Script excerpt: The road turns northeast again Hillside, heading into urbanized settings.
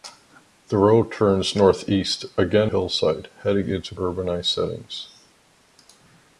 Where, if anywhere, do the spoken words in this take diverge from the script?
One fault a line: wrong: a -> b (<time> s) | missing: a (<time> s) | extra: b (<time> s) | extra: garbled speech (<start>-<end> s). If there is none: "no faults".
no faults